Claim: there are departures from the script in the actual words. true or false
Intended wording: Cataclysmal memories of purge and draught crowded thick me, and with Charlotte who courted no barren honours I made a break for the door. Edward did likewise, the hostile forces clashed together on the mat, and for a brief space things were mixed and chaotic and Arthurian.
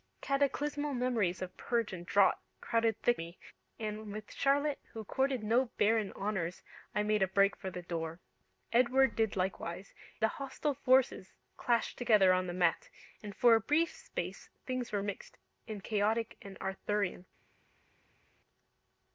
false